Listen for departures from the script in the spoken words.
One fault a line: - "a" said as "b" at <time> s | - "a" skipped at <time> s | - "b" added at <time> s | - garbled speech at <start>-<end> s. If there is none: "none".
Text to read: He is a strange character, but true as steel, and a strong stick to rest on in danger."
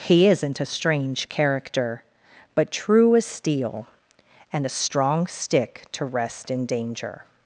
- "is" said as "isn't" at 0.3 s
- "on" skipped at 6.5 s